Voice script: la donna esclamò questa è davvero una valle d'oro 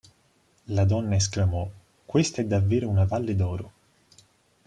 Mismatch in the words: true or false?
false